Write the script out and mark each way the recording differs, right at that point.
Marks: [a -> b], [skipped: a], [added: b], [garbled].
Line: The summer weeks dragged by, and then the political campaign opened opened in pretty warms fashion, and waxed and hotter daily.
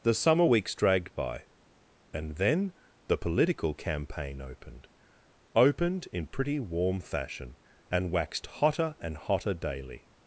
The summer weeks dragged by, and then the political campaign opened opened in pretty [warms -> warm] fashion, and waxed [added: hotter] and hotter daily.